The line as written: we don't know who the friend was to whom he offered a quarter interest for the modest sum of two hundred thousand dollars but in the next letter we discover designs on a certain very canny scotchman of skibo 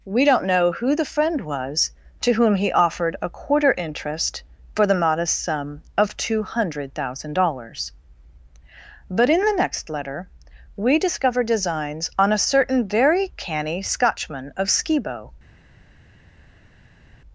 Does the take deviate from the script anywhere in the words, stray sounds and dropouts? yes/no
no